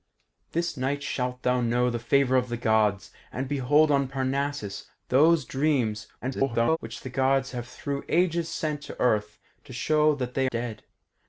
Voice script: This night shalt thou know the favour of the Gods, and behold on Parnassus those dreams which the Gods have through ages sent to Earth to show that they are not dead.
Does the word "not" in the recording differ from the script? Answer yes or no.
yes